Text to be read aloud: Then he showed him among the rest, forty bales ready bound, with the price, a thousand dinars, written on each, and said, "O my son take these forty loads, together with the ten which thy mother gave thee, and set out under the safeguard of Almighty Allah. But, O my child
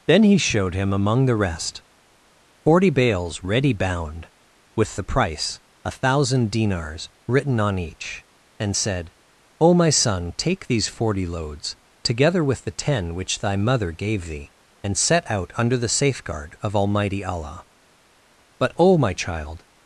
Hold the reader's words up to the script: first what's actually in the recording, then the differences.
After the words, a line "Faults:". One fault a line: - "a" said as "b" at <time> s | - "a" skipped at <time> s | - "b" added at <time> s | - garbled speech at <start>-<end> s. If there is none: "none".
Then he showed him among the rest, forty bales ready bound, with the price, a thousand dinars, written on each, and said, "O my son take these forty loads, together with the ten which thy mother gave thee, and set out under the safeguard of Almighty Allah. But, O my child
Faults:
none